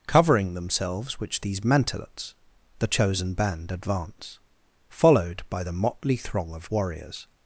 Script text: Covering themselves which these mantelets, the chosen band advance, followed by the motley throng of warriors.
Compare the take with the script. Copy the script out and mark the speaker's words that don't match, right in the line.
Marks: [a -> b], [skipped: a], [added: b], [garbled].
Covering themselves which these mantelets, the chosen band advance, followed by the motley throng of warriors.